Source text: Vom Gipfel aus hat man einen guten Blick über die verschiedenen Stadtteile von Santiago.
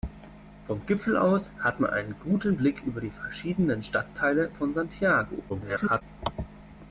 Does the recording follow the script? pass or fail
fail